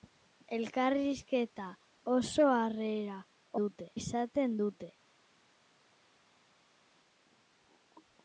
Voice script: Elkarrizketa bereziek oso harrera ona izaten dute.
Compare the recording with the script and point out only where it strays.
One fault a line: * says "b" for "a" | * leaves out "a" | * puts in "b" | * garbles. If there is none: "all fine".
* leaves out "bereziek"
* says "dute" for "ona"